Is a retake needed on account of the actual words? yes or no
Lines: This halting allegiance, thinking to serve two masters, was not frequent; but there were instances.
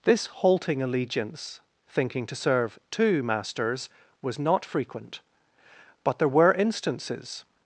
no